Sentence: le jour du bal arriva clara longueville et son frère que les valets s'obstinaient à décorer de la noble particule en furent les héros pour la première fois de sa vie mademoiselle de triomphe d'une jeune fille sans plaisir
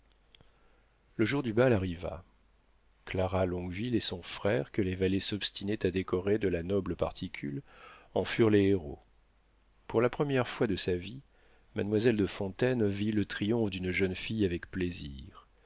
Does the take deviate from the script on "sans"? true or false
true